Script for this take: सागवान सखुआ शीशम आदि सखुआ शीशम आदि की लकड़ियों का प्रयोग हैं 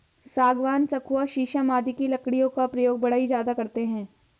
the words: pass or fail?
fail